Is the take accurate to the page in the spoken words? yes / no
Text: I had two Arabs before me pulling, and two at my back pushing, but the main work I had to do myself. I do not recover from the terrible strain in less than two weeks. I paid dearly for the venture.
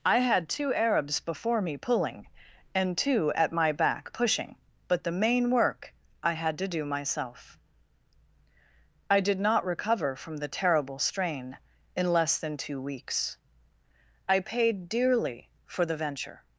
no